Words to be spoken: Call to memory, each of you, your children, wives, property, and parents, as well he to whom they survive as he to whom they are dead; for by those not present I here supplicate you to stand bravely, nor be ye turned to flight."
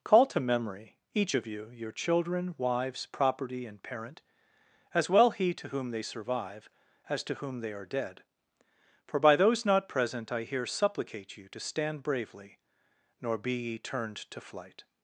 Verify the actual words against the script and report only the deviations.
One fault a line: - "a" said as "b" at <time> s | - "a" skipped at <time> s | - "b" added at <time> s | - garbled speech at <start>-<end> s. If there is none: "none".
- "parents" said as "parent" at 3.8 s
- "he" skipped at 7.2 s